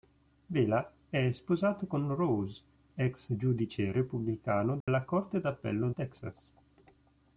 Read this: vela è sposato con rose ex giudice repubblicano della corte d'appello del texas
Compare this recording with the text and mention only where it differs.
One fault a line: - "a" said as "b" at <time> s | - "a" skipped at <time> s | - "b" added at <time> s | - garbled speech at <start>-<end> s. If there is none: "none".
- "del" skipped at 5.9 s